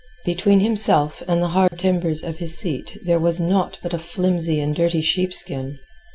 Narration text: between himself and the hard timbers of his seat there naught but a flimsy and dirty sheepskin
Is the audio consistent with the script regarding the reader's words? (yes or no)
no